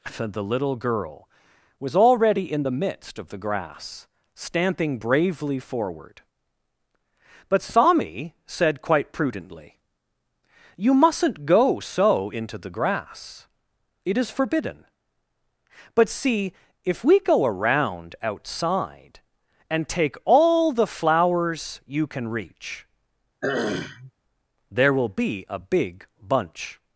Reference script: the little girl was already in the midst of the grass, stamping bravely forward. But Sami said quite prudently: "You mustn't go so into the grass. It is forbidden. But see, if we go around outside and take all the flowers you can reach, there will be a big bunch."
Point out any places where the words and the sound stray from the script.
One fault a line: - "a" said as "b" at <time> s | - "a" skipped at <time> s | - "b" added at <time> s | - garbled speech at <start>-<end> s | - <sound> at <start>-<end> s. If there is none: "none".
- throat clearing at 23.4-24.1 s